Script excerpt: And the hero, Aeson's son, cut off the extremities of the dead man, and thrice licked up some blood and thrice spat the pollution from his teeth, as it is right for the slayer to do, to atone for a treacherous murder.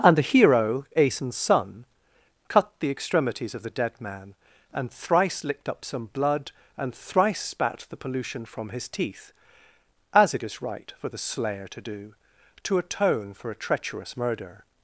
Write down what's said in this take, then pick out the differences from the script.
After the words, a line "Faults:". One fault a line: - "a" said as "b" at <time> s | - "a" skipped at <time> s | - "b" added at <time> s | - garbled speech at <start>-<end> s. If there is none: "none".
And the hero, Aeson's son, cut the extremities of the dead man, and thrice licked up some blood and thrice spat the pollution from his teeth, as it is right for the slayer to do, to atone for a treacherous murder.
Faults:
- "off" skipped at 2.7 s